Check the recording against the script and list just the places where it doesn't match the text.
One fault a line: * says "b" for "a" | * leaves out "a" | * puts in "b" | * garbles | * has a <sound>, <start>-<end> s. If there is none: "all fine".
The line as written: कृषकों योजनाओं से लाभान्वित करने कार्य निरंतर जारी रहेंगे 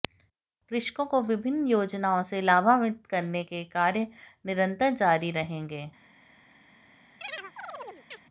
* puts in "को विभिन्न"
* puts in "के"
* has a chirp, 7.2-8.2 s